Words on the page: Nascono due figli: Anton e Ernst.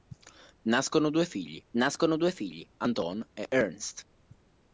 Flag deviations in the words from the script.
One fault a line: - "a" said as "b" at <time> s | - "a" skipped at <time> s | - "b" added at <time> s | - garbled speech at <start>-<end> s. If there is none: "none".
- "nascono due figli" added at 1.7 s